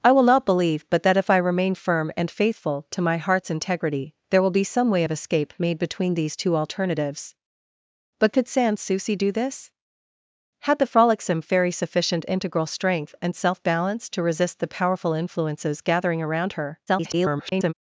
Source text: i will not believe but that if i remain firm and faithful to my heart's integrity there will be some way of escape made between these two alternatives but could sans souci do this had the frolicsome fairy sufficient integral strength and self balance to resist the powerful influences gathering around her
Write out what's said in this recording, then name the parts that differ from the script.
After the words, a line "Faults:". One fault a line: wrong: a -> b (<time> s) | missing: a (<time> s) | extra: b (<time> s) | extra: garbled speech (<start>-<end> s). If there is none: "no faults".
i will not believe but that if i remain firm and faithful to my heart's integrity there will be some way of escape made between these two alternatives but could sans souci do this had the frolicsome fairy sufficient integral strength and self balance to resist the powerful influences gathering around her [garbled]
Faults:
extra: garbled speech (16.9-17.7 s)